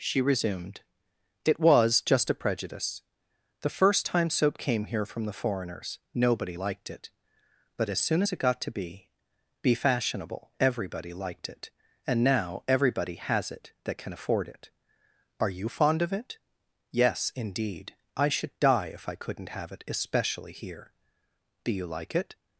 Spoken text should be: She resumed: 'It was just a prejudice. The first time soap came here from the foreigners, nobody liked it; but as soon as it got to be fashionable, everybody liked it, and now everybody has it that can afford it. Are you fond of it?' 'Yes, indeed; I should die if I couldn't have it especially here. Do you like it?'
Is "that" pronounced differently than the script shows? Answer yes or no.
no